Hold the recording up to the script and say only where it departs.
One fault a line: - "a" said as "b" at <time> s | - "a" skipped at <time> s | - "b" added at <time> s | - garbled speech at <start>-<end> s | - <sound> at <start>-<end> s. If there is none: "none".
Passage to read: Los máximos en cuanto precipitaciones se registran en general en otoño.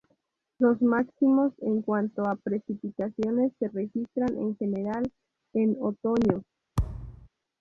- "a" added at 2.2 s
- thud at 6.8-7.3 s